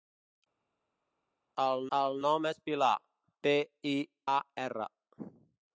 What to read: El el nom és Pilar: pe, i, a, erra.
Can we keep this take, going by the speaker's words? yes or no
yes